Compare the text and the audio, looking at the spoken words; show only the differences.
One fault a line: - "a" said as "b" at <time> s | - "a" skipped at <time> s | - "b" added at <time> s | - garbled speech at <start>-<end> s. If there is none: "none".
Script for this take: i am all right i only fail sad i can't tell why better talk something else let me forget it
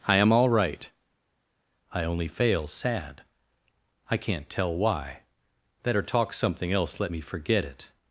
none